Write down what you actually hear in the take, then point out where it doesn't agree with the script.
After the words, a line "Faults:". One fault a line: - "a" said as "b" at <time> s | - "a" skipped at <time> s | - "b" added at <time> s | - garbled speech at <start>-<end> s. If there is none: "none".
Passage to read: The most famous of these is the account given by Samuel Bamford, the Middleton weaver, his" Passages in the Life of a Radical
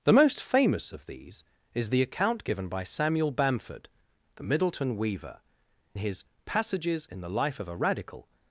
The most famous of these is the account given by Samuel Bamford, the Middleton weaver, his" Passages in the Life of a Radical
Faults:
none